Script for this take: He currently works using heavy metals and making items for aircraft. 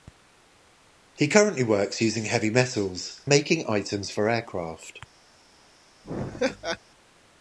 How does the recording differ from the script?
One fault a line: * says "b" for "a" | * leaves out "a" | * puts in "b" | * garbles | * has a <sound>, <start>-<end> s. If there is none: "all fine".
* leaves out "and"
* has a laugh, 6.0-6.8 s